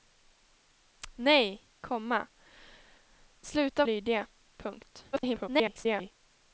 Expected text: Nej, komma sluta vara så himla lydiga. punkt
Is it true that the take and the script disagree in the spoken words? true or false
true